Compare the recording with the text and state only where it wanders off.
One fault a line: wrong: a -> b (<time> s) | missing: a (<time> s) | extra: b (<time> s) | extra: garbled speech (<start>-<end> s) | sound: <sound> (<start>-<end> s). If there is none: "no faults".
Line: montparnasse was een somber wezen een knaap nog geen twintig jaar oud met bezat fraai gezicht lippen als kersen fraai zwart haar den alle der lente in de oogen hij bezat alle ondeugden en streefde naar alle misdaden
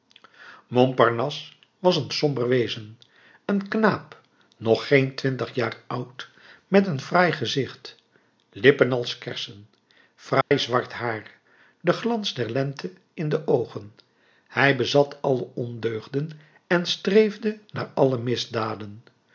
wrong: bezat -> een (6.9 s)
sound: dropout (10.4-10.5 s)
wrong: alle -> glans (11.9 s)